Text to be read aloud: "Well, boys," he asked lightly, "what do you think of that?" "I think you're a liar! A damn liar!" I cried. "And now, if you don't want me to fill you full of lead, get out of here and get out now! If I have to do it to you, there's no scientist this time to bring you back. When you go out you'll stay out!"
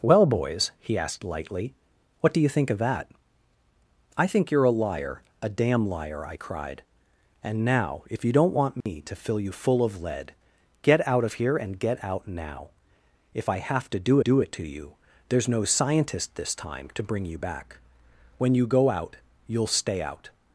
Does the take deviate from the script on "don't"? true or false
false